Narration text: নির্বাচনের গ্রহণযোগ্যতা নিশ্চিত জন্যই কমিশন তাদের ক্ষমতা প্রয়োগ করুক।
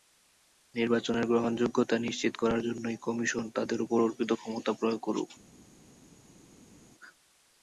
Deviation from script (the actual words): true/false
true